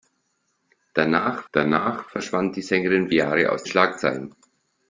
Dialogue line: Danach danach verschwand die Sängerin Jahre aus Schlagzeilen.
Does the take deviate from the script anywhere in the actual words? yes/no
no